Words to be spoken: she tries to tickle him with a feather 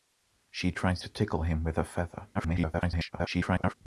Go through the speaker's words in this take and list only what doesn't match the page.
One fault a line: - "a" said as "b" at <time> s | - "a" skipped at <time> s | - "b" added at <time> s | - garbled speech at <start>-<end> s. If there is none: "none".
- garbled speech at 2.3-3.7 s